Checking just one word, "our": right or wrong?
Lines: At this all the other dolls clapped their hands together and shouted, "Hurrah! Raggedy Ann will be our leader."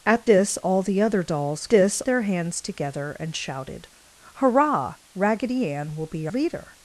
wrong